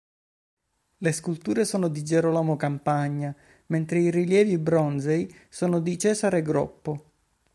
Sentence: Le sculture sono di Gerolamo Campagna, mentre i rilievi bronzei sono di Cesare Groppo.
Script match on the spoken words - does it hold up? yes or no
yes